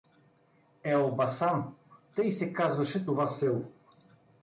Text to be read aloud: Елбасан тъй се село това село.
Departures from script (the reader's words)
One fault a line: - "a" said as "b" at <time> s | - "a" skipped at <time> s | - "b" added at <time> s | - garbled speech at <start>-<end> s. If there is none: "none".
- "село" said as "казваше" at 2.5 s